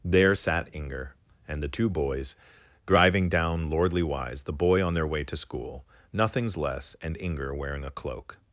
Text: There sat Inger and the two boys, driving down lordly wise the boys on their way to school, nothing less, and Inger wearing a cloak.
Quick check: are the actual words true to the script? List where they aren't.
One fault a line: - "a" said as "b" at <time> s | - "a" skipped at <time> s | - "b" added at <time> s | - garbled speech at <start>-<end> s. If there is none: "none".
- "boys" said as "boy" at 4.5 s
- "nothing" said as "nothings" at 6.1 s